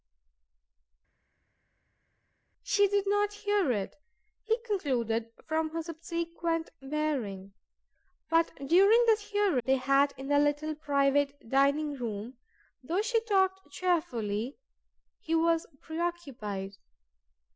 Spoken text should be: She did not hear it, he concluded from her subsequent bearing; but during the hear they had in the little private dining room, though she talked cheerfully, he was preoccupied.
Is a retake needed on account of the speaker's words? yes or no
no